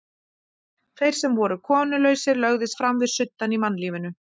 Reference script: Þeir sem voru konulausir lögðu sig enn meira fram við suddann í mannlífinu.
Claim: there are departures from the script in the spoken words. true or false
true